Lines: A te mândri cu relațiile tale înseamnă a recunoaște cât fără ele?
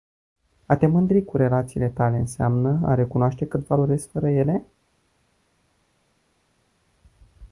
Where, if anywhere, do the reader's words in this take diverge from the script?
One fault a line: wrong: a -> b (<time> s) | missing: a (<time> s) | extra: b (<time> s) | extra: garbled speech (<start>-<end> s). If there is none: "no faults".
extra: valorezi (3.7 s)